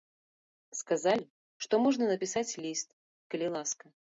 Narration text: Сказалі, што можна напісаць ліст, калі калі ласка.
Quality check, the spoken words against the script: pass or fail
fail